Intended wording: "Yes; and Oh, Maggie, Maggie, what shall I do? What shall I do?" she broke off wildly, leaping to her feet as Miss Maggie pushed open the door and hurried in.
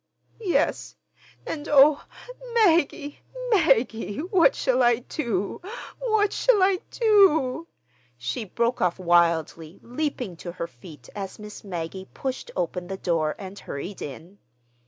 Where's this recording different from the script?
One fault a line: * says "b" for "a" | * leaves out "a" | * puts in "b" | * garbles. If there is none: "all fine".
all fine